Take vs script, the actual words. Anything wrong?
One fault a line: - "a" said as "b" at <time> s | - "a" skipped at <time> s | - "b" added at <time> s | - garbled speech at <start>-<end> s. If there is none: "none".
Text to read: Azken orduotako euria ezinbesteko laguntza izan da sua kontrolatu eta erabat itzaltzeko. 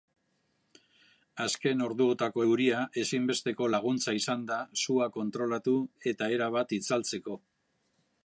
none